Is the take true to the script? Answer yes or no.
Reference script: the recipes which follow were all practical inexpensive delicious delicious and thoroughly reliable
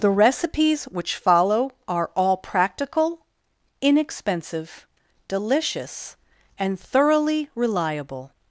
no